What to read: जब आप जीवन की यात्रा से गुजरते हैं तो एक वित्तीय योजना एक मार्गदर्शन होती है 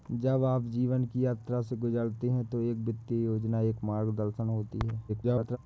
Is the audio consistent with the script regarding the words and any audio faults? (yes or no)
no